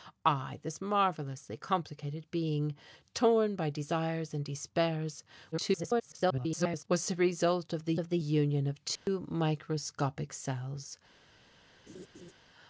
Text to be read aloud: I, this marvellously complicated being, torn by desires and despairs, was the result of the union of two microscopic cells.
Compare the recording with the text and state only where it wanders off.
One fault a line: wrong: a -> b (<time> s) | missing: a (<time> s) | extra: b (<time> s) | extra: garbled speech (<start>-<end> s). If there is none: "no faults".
extra: garbled speech (5.5-6.8 s)
extra: of the (8.0 s)